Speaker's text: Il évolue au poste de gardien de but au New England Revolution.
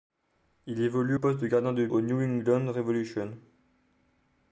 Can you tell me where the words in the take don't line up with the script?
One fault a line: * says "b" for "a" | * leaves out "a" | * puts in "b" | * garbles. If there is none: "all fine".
* leaves out "au"
* leaves out "but"